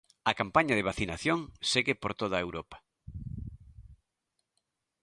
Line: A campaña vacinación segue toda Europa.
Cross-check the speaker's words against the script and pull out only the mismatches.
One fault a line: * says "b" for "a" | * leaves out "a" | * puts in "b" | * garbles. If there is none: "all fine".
* puts in "de"
* puts in "por"